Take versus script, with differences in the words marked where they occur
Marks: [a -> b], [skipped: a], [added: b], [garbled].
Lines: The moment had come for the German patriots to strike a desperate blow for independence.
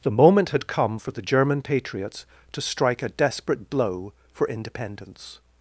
The moment had come for the German patriots to strike a desperate blow for independence.